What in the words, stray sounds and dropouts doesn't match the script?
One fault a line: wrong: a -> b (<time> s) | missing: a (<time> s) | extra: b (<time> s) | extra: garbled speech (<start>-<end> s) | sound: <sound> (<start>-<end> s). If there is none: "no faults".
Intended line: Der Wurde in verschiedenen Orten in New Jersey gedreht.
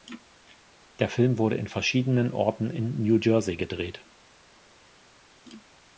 extra: Film (1.1 s)